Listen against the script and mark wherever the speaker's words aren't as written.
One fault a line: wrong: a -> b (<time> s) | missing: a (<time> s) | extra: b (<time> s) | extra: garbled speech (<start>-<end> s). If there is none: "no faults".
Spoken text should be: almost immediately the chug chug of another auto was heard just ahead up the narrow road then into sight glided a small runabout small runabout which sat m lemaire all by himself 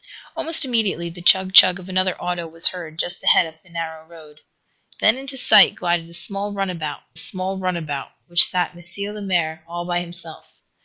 no faults